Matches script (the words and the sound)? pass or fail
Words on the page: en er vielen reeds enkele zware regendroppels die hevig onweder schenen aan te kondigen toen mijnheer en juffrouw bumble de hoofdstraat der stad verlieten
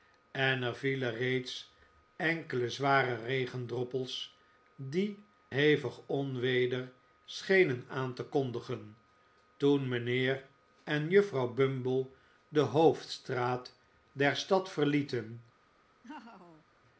fail